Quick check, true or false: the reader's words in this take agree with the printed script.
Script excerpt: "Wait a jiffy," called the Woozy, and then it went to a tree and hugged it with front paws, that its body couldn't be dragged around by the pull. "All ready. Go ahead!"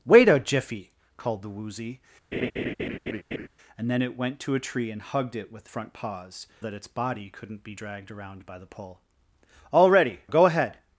true